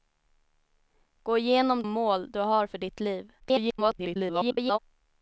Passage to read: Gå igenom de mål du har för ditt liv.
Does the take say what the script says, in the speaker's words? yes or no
no